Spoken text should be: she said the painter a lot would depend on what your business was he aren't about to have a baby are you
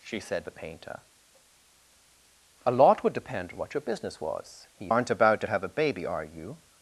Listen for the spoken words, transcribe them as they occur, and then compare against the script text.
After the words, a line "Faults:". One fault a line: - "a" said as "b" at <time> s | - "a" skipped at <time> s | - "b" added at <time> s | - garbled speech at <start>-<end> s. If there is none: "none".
she said the painter a lot would depend on what your business was he aren't about to have a baby are you
Faults:
none